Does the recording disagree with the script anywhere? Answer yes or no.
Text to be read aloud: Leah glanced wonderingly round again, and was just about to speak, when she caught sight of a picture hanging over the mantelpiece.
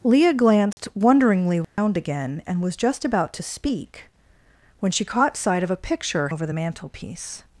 yes